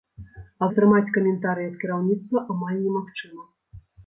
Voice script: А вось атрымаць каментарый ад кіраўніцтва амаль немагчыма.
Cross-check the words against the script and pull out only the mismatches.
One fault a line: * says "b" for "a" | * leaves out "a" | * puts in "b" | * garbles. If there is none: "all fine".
* leaves out "вось"